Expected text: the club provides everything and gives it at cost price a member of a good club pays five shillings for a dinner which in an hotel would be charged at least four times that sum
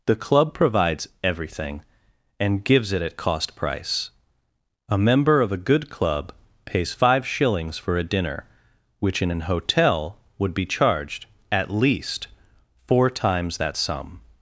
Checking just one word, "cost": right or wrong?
right